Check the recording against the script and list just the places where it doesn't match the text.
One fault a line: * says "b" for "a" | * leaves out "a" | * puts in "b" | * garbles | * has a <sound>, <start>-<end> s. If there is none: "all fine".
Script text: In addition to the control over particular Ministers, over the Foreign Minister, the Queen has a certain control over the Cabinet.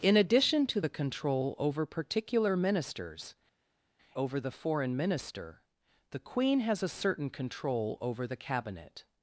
all fine